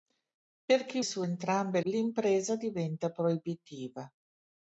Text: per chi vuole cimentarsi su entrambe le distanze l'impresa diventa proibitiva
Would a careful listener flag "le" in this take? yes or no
yes